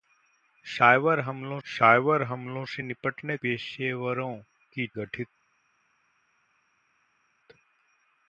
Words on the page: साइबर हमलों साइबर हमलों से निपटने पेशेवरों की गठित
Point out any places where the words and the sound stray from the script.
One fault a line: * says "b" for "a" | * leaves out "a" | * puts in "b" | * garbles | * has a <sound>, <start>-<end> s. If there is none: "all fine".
all fine